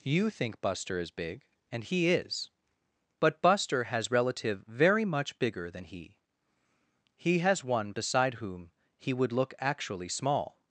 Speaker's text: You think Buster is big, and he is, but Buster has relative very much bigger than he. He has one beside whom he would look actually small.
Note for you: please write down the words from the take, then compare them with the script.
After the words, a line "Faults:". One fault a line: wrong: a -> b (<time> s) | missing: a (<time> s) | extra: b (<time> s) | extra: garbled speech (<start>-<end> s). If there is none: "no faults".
You think Buster is big, and he is, but Buster has relative very much bigger than he. He has one beside whom he would look actually small.
Faults:
no faults